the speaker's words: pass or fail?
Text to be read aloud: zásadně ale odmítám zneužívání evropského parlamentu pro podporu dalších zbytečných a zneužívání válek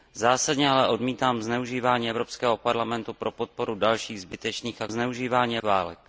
pass